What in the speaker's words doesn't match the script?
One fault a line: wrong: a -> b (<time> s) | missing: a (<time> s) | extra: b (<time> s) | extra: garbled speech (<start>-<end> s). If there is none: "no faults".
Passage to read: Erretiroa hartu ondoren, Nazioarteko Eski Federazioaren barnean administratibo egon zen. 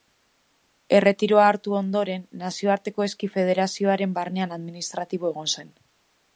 no faults